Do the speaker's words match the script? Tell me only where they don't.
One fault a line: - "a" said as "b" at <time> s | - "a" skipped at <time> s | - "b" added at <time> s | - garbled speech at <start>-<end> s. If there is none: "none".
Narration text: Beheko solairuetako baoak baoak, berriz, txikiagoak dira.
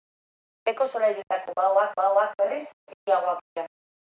none